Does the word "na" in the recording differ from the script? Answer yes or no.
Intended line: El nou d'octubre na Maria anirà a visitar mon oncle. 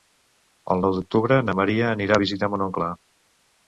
no